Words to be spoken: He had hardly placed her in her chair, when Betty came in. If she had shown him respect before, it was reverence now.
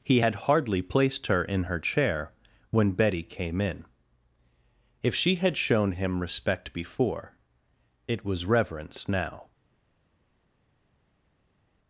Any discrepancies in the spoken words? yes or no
no